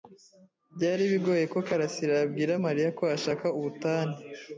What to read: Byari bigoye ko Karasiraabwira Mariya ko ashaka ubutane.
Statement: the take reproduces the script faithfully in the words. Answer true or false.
true